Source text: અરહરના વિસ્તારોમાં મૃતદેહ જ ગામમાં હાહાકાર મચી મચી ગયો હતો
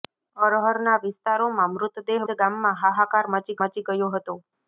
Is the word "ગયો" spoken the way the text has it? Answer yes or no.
yes